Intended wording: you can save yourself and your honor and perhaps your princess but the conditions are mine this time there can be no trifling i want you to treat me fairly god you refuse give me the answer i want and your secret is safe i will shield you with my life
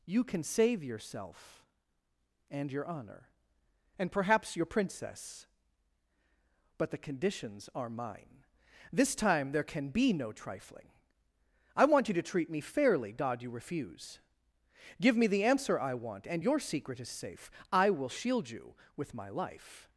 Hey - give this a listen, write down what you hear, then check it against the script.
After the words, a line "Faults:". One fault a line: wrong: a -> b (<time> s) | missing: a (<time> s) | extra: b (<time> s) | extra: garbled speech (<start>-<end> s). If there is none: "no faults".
you can save yourself and your honor and perhaps your princess but the conditions are mine this time there can be no trifling i want you to treat me fairly god you refuse give me the answer i want and your secret is safe i will shield you with my life
Faults:
no faults